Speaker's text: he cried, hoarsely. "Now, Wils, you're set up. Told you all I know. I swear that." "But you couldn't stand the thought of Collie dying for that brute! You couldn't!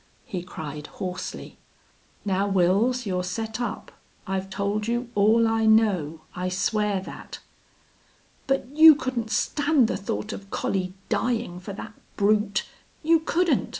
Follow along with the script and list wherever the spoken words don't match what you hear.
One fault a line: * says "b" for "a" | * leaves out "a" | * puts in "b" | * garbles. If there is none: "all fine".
* puts in "I've"